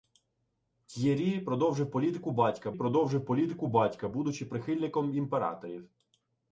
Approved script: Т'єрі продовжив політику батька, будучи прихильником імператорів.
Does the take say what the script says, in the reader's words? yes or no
no